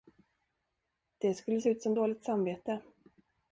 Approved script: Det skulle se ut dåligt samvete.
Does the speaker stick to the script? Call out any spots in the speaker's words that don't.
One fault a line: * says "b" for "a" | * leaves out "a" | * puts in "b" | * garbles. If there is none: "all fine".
* puts in "som"